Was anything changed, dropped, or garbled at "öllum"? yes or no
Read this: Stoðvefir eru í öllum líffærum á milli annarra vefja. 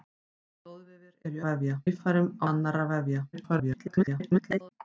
yes